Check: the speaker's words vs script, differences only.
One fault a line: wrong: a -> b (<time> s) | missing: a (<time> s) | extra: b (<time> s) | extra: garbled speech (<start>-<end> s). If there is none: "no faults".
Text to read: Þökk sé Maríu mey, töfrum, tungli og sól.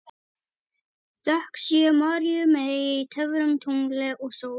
no faults